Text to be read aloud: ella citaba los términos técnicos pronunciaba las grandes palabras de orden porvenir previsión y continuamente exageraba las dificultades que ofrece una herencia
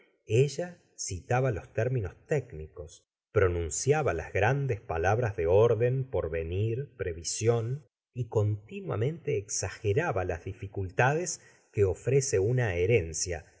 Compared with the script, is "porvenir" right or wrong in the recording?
right